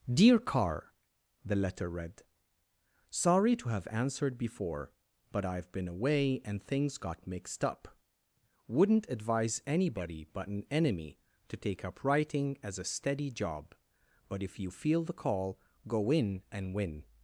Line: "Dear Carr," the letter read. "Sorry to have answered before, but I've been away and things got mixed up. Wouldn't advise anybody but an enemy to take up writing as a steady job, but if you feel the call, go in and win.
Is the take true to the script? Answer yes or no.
yes